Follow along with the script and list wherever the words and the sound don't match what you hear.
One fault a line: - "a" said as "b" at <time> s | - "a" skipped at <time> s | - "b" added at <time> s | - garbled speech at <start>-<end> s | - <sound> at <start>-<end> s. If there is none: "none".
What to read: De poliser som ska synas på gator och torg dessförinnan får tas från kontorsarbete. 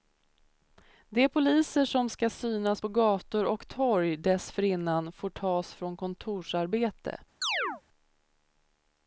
- chirp at 7.4-7.8 s